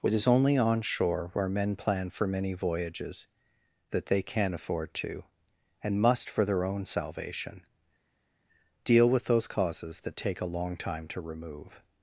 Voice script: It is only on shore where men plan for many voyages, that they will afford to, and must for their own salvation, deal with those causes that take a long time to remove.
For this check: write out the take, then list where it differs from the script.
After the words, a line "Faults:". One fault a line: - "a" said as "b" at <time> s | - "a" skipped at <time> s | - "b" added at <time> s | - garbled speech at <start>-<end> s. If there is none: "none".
It is only on shore where men plan for many voyages, that they can afford to, and must for their own salvation, deal with those causes that take a long time to remove.
Faults:
- "will" said as "can" at 4.2 s